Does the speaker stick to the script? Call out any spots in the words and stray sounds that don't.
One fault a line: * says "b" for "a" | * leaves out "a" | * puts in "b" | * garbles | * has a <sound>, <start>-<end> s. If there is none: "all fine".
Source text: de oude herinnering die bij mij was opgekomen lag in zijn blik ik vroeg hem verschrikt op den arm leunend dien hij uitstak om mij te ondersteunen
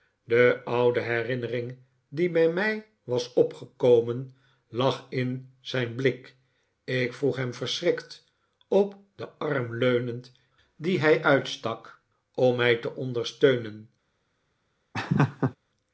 * has a laugh, 14.9-15.6 s